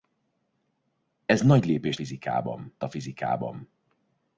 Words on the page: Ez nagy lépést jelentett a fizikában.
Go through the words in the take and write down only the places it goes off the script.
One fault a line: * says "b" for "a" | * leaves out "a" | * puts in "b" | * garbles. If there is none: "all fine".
* says "fizikában" for "jelentett"